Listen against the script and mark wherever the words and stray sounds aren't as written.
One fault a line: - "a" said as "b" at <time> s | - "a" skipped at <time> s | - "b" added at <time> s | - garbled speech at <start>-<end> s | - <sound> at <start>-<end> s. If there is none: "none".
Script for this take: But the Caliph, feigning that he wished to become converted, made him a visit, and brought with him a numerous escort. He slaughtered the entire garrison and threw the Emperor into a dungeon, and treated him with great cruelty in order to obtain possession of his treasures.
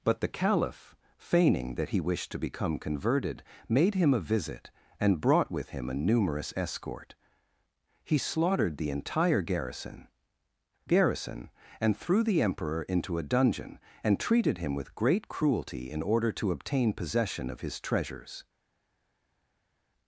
- "garrison" added at 10.9 s